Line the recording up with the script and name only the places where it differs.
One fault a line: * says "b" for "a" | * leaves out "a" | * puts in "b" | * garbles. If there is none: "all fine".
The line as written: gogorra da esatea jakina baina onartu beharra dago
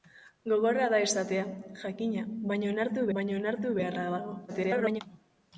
* puts in "baina onartu"
* garbles